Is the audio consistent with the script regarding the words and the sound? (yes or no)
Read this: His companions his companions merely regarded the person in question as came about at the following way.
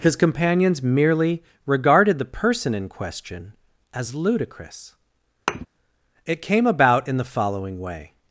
no